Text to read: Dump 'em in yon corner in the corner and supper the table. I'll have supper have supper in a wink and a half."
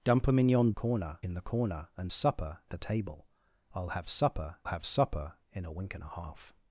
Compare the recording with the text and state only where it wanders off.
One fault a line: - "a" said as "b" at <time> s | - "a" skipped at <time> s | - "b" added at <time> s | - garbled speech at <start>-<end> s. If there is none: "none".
none